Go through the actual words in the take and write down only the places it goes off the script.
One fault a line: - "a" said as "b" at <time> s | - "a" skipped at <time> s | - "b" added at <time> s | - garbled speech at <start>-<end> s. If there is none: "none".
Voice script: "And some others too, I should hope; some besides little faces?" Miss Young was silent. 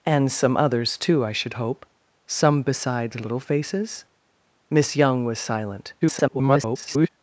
- garbled speech at 6.0-7.1 s